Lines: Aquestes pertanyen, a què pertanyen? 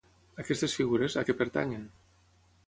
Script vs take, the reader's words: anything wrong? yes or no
yes